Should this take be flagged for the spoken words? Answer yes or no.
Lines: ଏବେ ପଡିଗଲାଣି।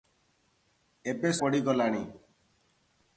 no